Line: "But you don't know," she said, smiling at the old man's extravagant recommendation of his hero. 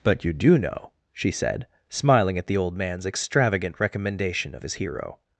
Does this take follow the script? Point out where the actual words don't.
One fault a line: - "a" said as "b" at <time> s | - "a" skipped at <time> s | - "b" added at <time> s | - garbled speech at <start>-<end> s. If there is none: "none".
- "don't" said as "do" at 0.3 s